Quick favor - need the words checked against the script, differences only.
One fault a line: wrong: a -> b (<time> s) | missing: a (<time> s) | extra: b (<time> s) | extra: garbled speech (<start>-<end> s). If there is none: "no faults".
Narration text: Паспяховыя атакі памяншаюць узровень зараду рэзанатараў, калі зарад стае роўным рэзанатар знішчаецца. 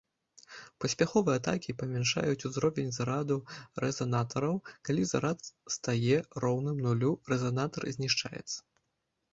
extra: нулю (6.9 s)